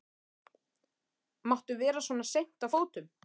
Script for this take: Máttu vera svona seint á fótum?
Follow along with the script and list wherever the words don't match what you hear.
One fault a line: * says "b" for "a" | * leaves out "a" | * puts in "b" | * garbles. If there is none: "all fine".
all fine